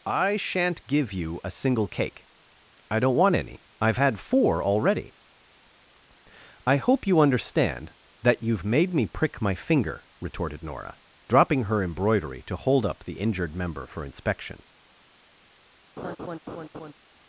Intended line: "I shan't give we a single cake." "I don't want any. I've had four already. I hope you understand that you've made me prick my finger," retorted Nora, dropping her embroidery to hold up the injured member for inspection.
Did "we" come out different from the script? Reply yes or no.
yes